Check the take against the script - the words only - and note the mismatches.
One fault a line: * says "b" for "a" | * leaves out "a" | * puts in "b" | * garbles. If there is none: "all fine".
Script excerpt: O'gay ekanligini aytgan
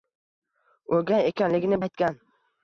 all fine